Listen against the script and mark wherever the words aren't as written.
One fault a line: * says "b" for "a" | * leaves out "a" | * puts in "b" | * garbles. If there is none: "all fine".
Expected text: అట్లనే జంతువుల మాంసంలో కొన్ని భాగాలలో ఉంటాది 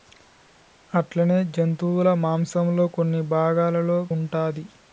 all fine